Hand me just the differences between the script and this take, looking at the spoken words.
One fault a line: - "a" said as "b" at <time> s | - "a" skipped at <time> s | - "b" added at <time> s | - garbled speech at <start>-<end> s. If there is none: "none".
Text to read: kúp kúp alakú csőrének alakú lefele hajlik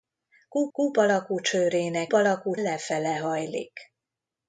none